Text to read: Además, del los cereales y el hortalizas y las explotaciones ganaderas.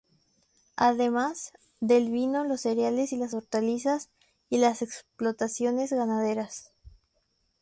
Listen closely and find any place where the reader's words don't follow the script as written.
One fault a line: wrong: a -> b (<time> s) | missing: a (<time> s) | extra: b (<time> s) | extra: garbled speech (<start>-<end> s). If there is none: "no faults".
extra: vino (2.1 s)
wrong: el -> las (3.2 s)